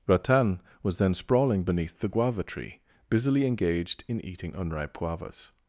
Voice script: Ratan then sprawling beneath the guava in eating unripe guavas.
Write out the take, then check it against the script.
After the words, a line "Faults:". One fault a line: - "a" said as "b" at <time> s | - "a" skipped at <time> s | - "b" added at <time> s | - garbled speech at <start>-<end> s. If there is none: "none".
Ratan was then sprawling beneath the guava tree, busily engaged in eating unripe guavas.
Faults:
- "was" added at 0.8 s
- "tree busily engaged" added at 2.4 s